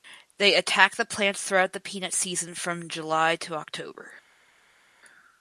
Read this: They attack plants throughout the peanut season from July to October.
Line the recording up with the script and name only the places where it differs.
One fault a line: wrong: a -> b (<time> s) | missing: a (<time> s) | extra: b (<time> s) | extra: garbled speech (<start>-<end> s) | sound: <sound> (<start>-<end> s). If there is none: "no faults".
extra: the (0.9 s)